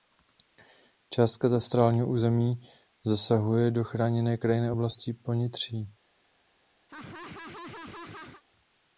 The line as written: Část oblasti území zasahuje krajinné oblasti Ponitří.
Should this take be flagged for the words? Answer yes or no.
yes